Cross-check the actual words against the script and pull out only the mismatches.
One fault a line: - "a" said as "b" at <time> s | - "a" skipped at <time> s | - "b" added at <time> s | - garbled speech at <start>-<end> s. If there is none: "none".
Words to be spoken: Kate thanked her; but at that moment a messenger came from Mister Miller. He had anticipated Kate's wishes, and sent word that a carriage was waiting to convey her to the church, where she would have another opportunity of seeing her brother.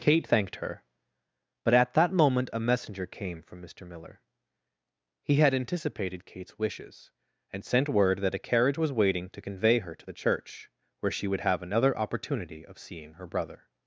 none